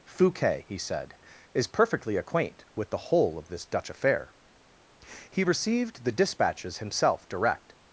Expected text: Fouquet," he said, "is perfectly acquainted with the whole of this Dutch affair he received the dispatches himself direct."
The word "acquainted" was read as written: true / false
false